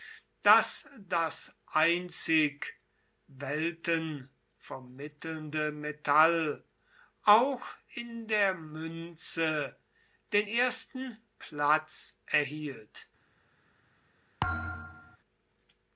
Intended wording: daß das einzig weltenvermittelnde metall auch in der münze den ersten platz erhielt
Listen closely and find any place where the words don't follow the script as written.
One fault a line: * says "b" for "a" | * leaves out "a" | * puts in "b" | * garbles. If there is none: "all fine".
all fine